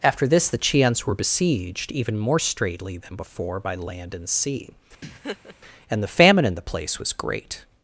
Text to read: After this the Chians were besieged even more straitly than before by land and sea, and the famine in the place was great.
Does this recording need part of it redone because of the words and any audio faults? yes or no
yes